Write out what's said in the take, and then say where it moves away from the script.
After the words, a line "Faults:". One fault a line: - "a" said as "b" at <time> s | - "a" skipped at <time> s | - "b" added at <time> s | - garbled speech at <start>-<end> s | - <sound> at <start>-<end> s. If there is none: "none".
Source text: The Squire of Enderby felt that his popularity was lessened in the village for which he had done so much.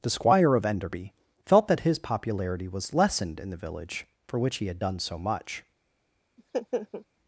The Squire of Enderby felt that his popularity was lessened in the village for which he had done so much.
Faults:
- laugh at 6.4-7.1 s